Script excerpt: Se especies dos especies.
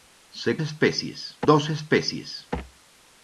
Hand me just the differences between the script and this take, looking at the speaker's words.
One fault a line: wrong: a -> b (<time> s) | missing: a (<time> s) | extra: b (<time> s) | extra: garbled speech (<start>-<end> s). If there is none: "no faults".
no faults